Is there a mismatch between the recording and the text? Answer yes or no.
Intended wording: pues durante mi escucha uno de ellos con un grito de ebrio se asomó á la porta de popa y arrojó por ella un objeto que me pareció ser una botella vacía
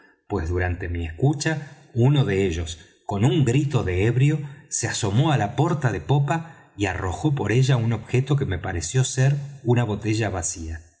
no